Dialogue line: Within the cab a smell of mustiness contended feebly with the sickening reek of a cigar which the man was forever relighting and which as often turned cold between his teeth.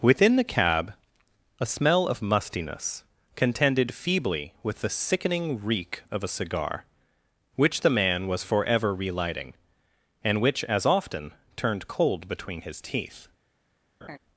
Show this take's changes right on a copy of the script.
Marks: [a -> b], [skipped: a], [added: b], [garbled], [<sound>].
Within the cab a smell of mustiness contended feebly with the sickening reek of a cigar which the man was forever relighting and which as often turned cold between his teeth. [laugh]